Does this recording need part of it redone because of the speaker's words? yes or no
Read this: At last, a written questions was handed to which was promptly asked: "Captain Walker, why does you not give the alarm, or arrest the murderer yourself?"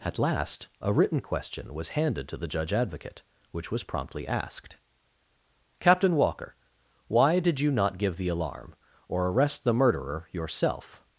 yes